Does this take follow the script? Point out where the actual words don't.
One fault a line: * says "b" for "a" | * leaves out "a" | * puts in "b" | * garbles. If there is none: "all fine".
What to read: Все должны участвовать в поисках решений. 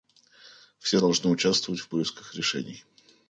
all fine